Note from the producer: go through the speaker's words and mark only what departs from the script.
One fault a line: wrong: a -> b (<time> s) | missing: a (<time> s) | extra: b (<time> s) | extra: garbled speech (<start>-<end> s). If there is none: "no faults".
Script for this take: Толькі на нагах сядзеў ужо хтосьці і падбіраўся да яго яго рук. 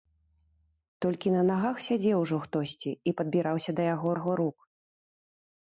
no faults